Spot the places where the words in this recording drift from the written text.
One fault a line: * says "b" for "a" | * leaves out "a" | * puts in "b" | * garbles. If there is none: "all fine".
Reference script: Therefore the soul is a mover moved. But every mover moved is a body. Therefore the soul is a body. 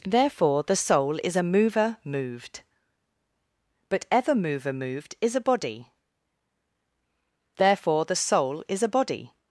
* says "ever" for "every"